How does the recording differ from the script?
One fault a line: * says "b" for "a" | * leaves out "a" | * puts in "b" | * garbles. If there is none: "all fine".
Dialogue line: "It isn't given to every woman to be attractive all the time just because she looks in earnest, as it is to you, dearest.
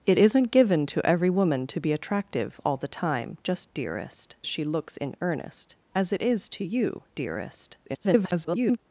* says "dearest" for "because"
* garbles